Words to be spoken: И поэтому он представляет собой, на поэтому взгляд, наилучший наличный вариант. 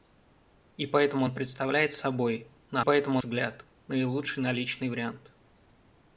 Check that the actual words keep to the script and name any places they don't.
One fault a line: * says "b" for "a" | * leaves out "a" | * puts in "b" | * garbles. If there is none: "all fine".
all fine